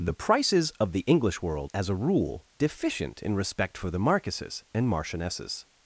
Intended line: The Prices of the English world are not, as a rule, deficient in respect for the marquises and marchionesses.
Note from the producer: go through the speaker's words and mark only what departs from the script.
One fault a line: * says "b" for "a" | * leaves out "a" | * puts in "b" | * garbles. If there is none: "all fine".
* leaves out "are not"